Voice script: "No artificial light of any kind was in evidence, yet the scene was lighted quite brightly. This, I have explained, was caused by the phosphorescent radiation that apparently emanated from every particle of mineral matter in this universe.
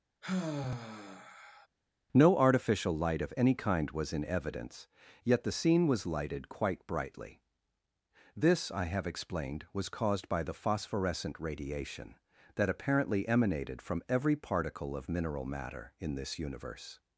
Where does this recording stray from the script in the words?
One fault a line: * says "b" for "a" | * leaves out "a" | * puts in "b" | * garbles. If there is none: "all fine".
all fine